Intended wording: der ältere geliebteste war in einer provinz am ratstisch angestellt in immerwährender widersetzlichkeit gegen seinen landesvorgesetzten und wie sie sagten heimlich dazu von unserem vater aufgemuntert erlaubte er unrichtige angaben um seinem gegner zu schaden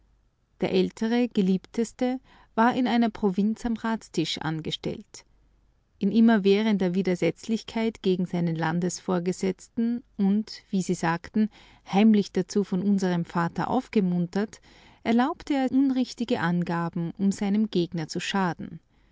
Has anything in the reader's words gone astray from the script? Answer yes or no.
no